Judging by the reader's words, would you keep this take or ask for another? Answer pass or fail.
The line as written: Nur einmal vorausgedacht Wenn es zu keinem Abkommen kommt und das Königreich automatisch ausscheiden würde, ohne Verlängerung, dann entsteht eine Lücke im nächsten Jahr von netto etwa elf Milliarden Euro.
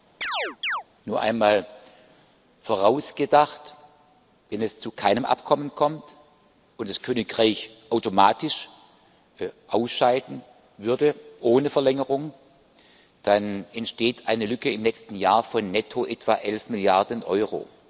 pass